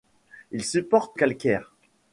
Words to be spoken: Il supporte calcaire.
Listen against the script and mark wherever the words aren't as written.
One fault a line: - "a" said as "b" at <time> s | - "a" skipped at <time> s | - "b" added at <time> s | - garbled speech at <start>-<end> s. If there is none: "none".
none